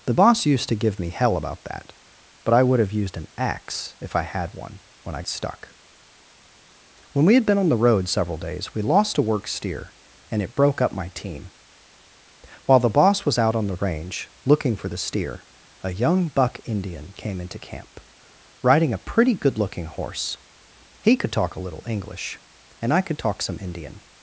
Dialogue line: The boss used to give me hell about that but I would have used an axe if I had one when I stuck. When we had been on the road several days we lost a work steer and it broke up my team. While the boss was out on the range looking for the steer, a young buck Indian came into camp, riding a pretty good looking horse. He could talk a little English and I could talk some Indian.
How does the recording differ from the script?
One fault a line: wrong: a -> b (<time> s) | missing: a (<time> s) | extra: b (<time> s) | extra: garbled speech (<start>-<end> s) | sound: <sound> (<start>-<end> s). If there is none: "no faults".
no faults